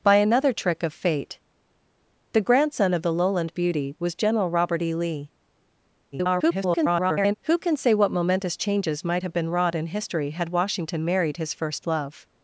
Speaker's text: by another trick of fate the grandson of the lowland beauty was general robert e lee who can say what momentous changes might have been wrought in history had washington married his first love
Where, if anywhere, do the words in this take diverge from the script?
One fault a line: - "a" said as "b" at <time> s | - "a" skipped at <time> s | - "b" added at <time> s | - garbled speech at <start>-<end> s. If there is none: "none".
- garbled speech at 6.1-7.3 s